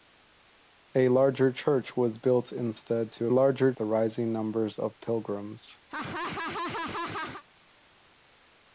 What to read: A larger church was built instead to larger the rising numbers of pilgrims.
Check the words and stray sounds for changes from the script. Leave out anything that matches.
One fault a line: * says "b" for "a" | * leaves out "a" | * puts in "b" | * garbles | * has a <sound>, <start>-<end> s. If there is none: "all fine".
* has a laugh, 5.9-7.4 s